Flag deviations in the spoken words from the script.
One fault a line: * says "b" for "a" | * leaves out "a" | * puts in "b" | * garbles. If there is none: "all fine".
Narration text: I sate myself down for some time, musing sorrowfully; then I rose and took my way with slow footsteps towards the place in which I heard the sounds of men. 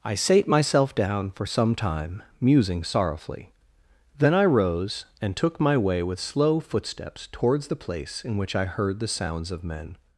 all fine